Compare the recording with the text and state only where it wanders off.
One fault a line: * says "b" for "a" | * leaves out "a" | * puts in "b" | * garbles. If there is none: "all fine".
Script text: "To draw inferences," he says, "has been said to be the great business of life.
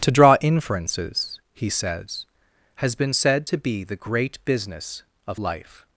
all fine